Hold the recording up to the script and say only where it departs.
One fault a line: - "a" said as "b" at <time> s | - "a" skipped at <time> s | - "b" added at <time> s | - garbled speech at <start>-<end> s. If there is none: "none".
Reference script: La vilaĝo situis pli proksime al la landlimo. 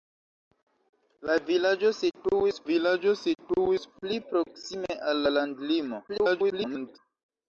- "vilaĝo situis" added at 2.7 s
- garbled speech at 6.1-7.0 s